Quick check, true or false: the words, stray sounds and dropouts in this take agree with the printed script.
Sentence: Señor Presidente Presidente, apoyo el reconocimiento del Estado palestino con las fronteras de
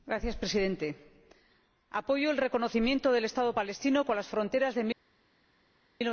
false